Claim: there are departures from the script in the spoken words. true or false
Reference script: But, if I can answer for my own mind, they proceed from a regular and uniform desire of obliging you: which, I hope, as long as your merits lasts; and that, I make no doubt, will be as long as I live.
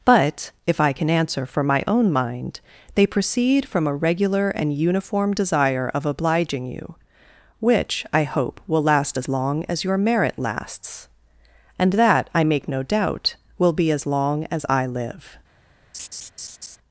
true